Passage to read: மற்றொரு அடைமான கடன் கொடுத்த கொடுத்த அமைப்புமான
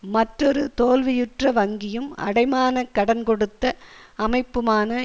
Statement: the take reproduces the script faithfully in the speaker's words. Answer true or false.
false